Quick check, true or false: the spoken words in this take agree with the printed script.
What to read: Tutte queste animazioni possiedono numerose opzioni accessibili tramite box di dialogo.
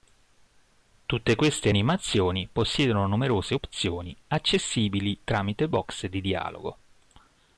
true